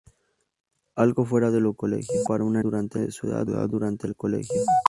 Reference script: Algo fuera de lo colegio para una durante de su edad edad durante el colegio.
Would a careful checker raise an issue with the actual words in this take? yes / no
no